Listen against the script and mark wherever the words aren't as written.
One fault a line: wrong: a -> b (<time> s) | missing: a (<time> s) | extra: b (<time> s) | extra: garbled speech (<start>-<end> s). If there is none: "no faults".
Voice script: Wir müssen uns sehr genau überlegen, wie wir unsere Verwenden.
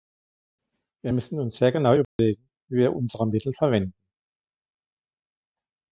extra: Mittel (3.3 s)